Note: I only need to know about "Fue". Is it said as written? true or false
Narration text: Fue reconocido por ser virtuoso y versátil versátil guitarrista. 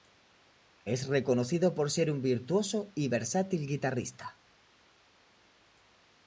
false